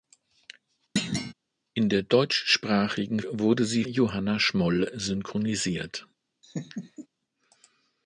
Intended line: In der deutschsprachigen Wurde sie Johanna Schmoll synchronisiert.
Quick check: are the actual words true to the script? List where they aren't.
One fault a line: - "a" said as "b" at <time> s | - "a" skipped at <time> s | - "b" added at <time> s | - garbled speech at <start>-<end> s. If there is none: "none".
none